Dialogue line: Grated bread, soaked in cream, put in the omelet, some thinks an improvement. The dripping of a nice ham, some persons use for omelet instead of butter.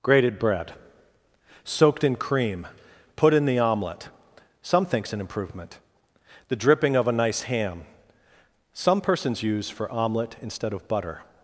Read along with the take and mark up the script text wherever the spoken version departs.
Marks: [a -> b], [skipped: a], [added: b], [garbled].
Grated bread, soaked in cream, put in the omelet, some thinks an improvement. The dripping of a nice ham, some persons use for omelet instead of butter.